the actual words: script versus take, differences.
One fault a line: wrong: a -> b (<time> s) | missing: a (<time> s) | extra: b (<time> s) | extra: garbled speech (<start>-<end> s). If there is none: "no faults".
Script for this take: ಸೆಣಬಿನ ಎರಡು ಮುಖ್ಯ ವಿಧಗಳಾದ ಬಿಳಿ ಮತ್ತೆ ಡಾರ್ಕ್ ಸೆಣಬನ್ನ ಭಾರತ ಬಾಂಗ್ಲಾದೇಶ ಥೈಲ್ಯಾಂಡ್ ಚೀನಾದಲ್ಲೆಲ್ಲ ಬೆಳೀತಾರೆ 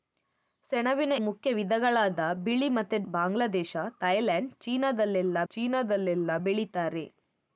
missing: ಎರಡು (1.1 s)
missing: ಡಾರ್ಕ್ ಸೆಣಬನ್ನ ಭಾರತ (3.0 s)
extra: ಚೀನಾದಲ್ಲೆಲ್ಲ (5.5 s)